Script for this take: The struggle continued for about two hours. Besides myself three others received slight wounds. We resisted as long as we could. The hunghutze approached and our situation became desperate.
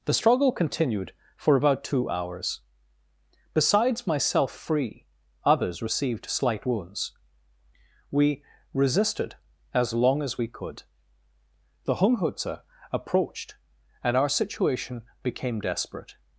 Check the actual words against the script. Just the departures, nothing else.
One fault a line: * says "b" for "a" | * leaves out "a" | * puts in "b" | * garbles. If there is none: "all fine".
* says "free" for "three"